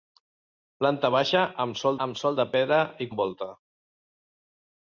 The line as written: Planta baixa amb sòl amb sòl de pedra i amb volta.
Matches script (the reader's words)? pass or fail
pass